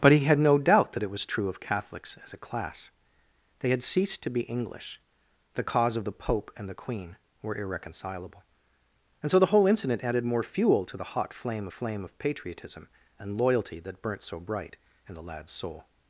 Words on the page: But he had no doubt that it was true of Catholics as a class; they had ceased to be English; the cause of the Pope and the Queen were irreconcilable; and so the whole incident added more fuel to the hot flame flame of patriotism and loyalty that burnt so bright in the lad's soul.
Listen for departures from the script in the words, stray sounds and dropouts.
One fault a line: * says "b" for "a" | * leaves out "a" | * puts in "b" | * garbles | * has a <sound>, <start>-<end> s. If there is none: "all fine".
all fine